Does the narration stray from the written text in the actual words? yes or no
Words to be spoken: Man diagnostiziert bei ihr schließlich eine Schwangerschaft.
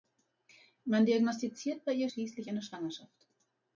no